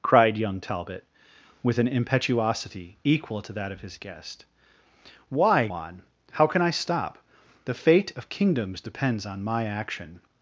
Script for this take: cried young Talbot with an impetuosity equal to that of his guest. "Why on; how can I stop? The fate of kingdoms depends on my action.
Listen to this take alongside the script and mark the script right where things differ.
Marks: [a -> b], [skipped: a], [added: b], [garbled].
cried young Talbot with an impetuosity equal to that of his guest. "Why on; how can I stop? The fate of kingdoms depends on my action.